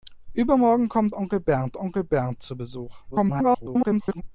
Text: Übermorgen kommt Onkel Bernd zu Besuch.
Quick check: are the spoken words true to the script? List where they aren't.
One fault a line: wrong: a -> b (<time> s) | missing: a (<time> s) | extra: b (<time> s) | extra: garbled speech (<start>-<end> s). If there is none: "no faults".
extra: Onkel Bernd (1.8 s)
extra: garbled speech (3.1-4.2 s)